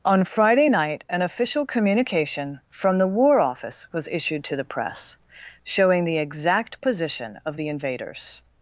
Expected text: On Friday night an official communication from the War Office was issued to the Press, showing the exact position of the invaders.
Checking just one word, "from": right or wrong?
right